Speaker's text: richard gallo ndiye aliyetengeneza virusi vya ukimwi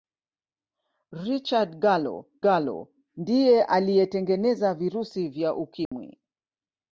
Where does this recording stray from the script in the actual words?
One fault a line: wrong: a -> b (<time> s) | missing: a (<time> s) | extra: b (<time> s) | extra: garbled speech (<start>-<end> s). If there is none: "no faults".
extra: gallo (2.4 s)